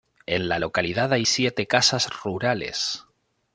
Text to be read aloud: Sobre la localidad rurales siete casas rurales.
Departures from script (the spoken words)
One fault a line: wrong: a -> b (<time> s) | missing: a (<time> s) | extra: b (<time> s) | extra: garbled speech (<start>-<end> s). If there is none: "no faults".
wrong: Sobre -> En (0.2 s)
wrong: rurales -> hay (1.1 s)